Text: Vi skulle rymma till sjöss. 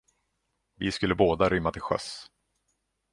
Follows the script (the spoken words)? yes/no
no